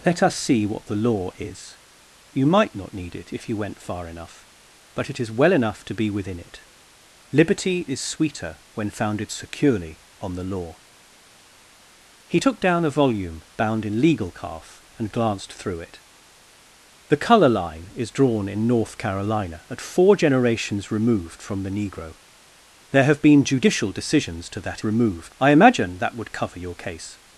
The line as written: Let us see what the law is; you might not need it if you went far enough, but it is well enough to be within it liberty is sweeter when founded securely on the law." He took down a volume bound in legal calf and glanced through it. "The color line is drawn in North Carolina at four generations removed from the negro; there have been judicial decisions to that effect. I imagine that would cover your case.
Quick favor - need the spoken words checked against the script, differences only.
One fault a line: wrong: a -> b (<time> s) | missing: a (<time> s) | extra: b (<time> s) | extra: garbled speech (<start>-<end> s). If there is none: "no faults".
wrong: effect -> removed (24.8 s)